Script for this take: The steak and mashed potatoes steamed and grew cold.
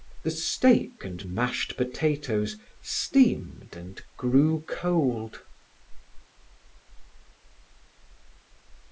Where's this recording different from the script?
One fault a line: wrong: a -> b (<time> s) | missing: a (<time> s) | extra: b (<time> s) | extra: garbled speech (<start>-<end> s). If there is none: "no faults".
no faults